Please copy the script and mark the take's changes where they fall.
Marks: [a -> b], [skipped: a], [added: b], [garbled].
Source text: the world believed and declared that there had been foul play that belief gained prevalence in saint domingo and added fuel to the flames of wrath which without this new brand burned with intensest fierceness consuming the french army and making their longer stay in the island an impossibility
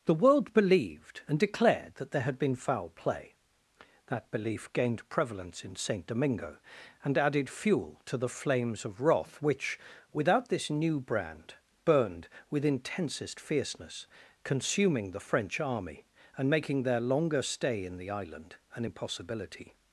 the world believed and declared that there had been foul play that belief gained prevalence in saint domingo and added fuel to the flames of wrath which without this new brand burned with intensest fierceness consuming the french army and making their longer stay in the island an impossibility